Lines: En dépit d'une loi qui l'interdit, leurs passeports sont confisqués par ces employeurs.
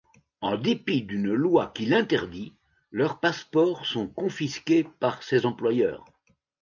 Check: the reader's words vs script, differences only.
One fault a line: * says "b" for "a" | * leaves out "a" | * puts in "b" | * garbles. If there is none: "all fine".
all fine